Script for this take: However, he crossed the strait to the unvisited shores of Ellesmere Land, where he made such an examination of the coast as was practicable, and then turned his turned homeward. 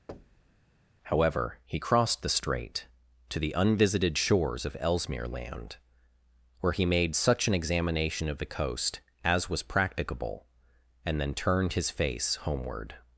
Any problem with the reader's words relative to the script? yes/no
yes